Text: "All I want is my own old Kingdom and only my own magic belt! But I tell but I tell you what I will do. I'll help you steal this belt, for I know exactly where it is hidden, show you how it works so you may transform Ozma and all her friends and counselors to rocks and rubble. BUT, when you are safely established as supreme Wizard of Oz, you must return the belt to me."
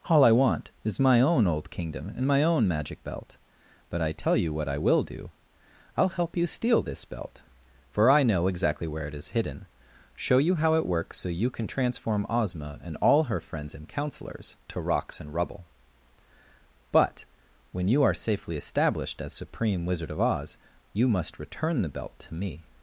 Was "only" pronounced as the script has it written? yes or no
no